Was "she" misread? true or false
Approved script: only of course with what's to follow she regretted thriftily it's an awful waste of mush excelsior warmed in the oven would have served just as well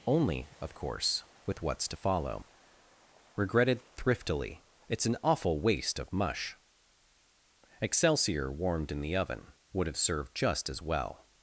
true